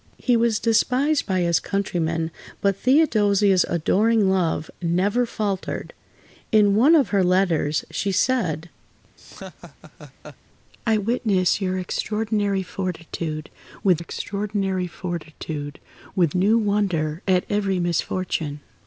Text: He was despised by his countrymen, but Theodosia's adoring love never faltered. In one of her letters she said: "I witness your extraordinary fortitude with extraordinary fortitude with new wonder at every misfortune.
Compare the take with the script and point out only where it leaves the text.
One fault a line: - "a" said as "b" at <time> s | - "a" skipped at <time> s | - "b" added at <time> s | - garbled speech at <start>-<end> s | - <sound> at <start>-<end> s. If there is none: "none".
- laugh at 9.2-10.4 s